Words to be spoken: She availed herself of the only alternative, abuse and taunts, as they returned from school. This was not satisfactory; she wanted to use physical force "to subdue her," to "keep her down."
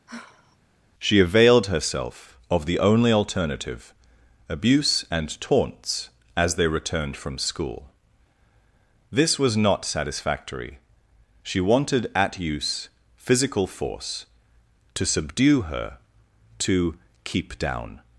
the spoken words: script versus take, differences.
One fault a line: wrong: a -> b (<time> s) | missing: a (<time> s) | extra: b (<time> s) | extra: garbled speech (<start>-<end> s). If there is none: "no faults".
wrong: to -> at (12.1 s)
missing: her (17.6 s)